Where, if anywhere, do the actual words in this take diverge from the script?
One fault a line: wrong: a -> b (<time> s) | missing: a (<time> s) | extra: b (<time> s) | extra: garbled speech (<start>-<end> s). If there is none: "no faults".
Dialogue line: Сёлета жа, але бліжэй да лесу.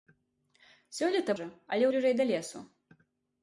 no faults